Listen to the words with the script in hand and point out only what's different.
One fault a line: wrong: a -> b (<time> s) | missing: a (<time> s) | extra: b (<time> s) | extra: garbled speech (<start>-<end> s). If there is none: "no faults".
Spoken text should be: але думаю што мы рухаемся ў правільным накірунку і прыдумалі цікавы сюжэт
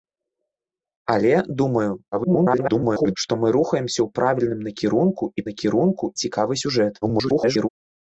extra: garbled speech (2.1-3.2 s)
wrong: прыдумалі -> накірунку (5.5 s)
extra: garbled speech (7.0-7.7 s)